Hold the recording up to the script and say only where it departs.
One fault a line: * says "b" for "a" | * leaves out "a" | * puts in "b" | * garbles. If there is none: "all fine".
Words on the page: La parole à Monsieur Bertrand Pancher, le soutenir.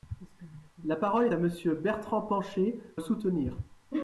all fine